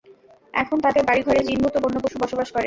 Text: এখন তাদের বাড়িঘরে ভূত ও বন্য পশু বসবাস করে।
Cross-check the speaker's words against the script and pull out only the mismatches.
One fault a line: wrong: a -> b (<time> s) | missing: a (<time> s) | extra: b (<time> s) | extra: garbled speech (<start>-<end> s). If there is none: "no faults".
extra: জিন (1.5 s)